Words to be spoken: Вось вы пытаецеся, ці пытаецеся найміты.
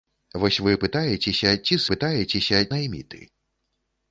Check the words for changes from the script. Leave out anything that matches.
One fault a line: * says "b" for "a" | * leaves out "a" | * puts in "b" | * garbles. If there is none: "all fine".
all fine